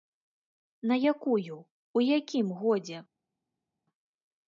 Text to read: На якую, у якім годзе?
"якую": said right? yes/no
yes